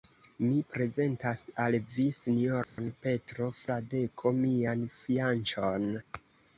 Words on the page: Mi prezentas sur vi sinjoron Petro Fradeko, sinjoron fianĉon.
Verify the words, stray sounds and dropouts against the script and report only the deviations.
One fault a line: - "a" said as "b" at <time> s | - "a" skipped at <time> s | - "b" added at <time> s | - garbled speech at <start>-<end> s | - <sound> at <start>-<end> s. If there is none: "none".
- "sur" said as "al" at 1.6 s
- dropout at 2.6-2.8 s
- "sinjoron" said as "mian" at 4.4 s